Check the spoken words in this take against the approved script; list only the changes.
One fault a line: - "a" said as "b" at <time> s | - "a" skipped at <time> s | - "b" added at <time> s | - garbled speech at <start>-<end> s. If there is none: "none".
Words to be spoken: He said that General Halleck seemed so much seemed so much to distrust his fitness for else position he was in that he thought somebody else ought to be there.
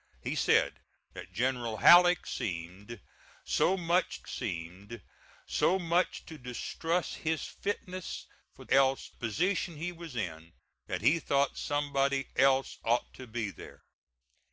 none